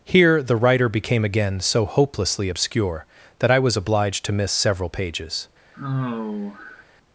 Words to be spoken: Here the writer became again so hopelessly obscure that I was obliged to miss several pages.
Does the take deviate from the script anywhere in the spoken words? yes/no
no